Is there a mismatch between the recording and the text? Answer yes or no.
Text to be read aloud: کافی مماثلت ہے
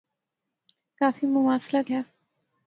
no